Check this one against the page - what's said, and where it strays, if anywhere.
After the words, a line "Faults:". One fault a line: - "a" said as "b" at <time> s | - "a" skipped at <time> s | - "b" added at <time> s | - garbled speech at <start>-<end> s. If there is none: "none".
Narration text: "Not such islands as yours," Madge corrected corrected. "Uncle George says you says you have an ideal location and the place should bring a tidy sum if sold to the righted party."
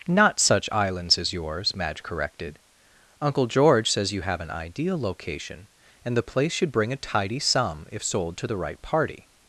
"Not such islands as yours," Madge corrected. "Uncle George says you have an ideal location and the place should bring a tidy sum if sold to the right party."
Faults:
- "corrected" skipped at 2.6 s
- "says you" skipped at 4.2 s
- "righted" said as "right" at 8.6 s